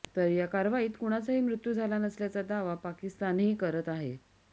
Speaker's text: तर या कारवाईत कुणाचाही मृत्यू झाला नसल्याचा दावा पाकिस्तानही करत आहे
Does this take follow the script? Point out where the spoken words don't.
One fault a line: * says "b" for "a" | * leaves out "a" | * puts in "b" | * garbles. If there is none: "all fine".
all fine